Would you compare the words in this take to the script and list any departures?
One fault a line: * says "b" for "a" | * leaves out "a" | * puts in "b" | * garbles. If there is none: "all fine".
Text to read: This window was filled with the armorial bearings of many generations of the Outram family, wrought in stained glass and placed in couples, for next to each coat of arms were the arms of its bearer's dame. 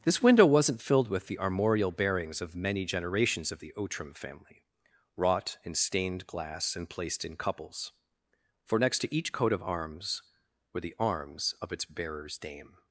* says "wasn't" for "was"